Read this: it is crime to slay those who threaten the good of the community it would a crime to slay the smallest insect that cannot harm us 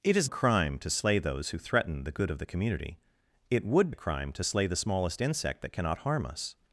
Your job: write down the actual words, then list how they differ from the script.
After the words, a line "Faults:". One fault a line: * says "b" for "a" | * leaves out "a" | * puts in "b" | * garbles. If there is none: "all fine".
it is crime to slay those who threaten the good of the community it would a crime to slay the smallest insect that cannot harm us
Faults:
all fine